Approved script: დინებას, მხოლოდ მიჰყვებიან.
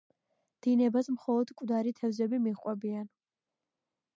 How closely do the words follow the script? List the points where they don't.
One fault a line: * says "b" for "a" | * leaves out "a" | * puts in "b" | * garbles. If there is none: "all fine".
* puts in "მკვდარი თევზები"